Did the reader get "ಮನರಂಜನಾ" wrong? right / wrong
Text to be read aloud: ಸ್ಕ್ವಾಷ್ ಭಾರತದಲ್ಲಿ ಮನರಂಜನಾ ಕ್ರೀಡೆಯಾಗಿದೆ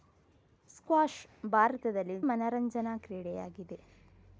right